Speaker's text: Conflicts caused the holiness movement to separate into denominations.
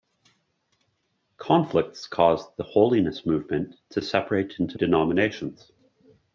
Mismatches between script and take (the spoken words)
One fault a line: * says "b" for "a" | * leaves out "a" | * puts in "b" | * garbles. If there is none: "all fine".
all fine